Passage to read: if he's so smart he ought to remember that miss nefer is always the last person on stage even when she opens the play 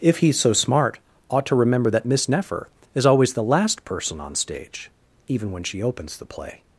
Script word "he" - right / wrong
wrong